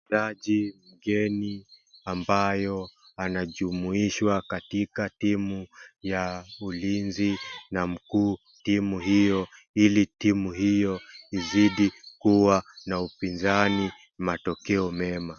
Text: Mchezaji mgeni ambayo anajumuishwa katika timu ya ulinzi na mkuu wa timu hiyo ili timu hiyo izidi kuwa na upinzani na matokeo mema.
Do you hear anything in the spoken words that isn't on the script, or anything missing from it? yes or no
yes